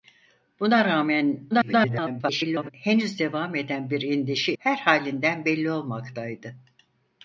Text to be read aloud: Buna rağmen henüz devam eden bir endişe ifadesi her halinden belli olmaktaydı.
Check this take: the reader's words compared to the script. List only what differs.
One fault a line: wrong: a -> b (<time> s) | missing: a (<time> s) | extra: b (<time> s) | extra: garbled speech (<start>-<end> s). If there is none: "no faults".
extra: garbled speech (1.5-2.7 s)
missing: ifadesi (4.5 s)